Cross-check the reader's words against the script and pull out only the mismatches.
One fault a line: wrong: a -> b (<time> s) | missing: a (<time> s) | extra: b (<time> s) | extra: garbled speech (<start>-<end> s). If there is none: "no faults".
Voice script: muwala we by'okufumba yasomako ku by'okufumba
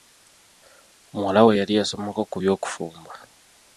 wrong: by'okufumba -> yali (1.6 s)